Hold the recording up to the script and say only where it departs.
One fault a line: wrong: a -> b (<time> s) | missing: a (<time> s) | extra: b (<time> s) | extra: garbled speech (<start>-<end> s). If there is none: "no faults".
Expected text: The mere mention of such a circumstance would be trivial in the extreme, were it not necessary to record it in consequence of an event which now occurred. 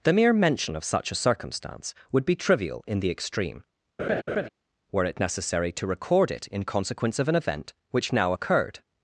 missing: not (5.2 s)